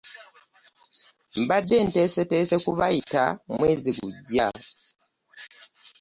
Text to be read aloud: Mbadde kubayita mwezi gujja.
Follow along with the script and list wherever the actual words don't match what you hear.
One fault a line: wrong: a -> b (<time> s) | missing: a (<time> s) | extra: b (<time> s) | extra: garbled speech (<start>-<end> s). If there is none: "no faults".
extra: nteeseteese (1.9 s)